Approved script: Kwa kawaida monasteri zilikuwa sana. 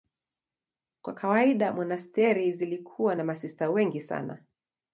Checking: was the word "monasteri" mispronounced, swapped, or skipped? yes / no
no